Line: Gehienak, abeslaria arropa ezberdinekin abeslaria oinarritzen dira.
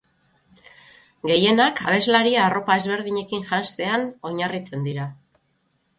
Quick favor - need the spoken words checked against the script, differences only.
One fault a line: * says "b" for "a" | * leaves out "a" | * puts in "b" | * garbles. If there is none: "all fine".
* says "janztean" for "abeslaria"